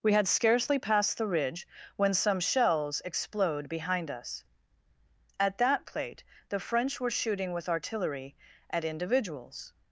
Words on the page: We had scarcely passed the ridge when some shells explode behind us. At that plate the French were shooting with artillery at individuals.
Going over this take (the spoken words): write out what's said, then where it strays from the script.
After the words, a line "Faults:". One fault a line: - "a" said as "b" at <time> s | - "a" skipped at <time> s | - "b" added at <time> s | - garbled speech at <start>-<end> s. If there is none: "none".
We had scarcely passed the ridge when some shells explode behind us. At that plate the French were shooting with artillery at individuals.
Faults:
none